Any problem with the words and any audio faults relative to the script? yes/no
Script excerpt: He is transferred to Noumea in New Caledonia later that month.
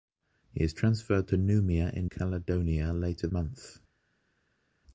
yes